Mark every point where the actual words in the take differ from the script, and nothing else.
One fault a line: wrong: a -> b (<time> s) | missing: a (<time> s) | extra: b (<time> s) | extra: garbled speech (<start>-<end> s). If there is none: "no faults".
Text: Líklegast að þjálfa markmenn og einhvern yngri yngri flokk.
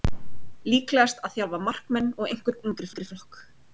no faults